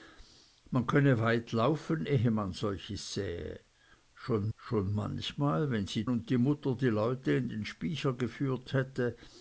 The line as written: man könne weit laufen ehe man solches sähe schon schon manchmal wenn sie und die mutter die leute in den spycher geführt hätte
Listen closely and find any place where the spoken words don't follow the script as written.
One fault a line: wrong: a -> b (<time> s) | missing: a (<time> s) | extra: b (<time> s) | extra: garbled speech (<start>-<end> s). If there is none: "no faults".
no faults